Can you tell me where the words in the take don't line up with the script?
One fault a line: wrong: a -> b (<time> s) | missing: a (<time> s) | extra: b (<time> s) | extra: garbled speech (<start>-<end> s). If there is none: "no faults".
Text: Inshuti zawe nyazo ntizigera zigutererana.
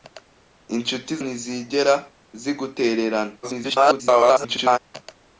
missing: zawe nyazo (1.1 s)
extra: garbled speech (3.4-4.8 s)